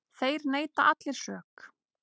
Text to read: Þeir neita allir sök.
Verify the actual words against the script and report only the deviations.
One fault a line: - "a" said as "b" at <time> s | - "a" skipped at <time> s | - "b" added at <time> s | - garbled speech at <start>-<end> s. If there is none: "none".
none